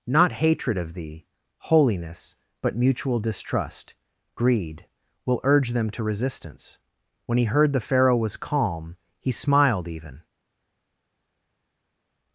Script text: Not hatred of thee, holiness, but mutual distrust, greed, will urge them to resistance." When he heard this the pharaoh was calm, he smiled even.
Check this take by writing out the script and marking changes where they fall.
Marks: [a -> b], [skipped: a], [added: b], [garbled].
Not hatred of thee, holiness, but mutual distrust, greed, will urge them to resistance." When he heard [skipped: this] the pharaoh was calm, he smiled even.